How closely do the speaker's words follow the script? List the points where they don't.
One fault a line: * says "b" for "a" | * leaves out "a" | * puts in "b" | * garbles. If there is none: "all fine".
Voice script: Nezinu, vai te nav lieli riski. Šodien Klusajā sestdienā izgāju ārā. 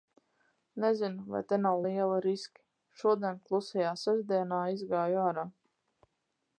all fine